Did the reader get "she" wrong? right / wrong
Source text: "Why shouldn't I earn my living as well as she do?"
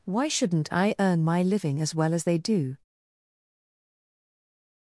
wrong